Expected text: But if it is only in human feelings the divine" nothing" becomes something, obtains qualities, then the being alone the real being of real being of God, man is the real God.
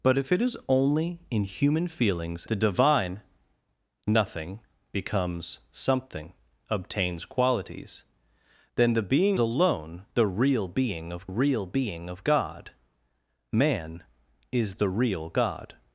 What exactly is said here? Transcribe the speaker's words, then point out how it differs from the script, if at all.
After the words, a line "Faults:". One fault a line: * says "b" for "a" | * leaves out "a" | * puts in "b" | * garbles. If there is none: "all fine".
But if it is only in human feelings the divine" nothing" becomes something, obtains qualities, then the being alone the real being of real being of God, man is the real God.
Faults:
all fine